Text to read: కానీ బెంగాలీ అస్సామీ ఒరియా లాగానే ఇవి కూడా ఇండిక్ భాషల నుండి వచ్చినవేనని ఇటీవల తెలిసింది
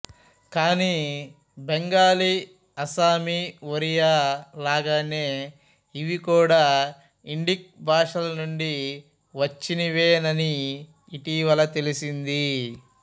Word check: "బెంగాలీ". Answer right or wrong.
right